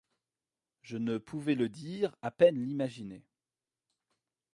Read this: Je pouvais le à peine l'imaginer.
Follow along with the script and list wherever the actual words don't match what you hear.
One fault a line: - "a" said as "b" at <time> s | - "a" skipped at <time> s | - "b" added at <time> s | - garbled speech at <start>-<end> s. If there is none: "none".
- "ne" added at 1.0 s
- "dire" added at 1.7 s